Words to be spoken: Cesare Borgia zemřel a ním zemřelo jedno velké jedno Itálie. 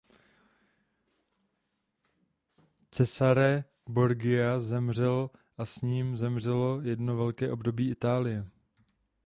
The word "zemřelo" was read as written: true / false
true